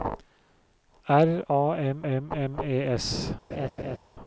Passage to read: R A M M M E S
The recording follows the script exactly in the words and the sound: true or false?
false